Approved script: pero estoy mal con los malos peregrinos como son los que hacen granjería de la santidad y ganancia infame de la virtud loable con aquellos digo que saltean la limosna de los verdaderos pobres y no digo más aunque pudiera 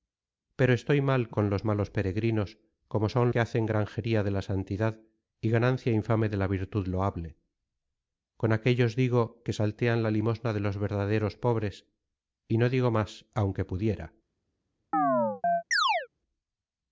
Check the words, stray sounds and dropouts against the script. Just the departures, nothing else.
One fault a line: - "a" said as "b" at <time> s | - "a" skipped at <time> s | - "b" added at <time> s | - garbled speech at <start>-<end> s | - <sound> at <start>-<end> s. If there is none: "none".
- "los" skipped at 3.3 s
- chirp at 14.9-16.1 s